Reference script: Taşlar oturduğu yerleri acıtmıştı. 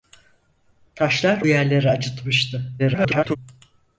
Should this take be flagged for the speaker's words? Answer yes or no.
yes